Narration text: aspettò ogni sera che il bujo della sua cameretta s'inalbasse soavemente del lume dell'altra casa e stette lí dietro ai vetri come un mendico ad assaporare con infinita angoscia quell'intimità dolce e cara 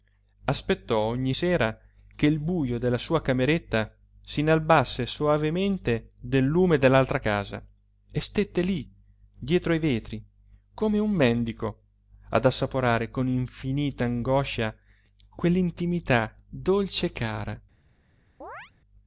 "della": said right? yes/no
yes